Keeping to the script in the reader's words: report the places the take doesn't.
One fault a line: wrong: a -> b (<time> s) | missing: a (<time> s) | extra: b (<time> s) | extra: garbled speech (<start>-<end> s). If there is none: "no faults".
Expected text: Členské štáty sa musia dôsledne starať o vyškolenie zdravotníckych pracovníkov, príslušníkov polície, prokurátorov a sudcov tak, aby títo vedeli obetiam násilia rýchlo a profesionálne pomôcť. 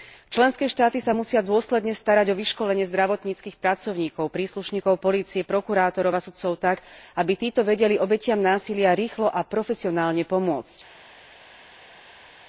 no faults